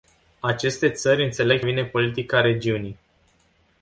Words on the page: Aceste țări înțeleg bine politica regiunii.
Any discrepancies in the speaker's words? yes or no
no